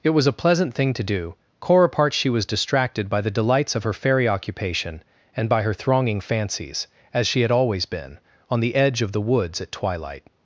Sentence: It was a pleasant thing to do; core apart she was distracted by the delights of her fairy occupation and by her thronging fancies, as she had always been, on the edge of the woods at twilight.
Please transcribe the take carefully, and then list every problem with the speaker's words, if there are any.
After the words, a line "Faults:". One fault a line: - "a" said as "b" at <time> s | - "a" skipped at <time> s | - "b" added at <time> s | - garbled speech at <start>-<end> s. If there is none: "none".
It was a pleasant thing to do; core apart she was distracted by the delights of her fairy occupation and by her thronging fancies, as she had always been, on the edge of the woods at twilight.
Faults:
none